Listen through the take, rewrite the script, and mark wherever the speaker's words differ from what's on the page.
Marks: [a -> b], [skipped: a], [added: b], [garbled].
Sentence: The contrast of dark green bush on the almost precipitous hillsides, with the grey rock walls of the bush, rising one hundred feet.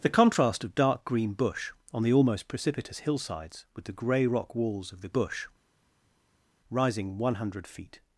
The contrast of dark green bush on the almost precipitous hillsides, with the grey rock walls of the bush, rising one hundred feet.